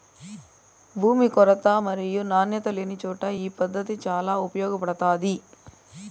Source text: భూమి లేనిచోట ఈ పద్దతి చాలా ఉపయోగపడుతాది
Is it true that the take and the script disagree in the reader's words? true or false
true